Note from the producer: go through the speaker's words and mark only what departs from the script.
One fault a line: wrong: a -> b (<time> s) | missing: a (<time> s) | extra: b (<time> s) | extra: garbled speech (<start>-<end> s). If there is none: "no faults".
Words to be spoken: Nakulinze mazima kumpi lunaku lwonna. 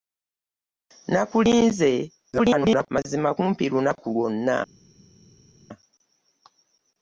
extra: garbled speech (2.3-2.9 s)